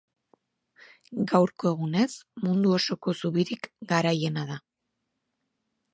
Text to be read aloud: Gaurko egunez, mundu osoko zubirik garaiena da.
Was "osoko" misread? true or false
false